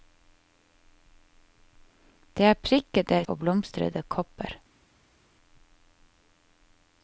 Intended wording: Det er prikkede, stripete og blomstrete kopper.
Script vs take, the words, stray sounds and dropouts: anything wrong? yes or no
yes